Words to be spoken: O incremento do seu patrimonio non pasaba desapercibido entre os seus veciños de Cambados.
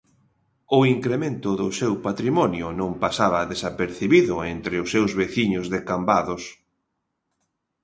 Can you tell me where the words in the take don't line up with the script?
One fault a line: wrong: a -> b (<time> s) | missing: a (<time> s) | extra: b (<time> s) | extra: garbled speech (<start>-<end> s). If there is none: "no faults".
no faults